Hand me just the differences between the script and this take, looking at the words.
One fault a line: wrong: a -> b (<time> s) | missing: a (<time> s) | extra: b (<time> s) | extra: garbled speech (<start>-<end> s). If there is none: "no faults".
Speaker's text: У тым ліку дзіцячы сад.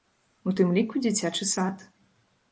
no faults